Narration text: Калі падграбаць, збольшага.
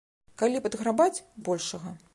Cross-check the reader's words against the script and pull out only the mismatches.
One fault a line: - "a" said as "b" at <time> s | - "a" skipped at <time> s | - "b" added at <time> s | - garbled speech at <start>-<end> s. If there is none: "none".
none